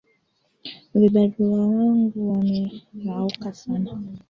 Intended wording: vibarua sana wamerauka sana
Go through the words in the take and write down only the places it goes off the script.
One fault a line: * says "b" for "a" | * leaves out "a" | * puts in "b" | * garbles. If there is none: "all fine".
* says "wangu" for "sana"